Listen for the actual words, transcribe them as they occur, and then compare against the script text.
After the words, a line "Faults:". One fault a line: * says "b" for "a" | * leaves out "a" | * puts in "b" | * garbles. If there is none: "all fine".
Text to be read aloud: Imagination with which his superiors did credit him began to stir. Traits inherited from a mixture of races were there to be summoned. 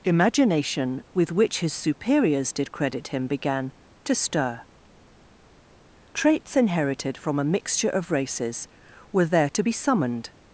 Imagination with which his superiors did credit him began to stir. Traits inherited from a mixture of races were there to be summoned.
Faults:
all fine